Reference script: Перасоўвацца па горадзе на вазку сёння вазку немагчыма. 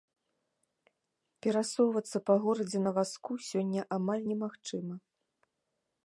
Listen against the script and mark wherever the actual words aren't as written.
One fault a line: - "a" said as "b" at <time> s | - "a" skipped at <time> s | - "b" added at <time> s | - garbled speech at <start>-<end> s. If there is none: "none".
- "вазку" said as "амаль" at 4.0 s